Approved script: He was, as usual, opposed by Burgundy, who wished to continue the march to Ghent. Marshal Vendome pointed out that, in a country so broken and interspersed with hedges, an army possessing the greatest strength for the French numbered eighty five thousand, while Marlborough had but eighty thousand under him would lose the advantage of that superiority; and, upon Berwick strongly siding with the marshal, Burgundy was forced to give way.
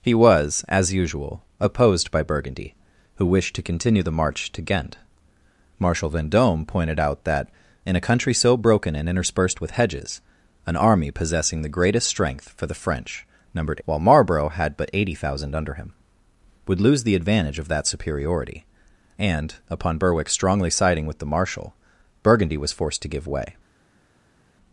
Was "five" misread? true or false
true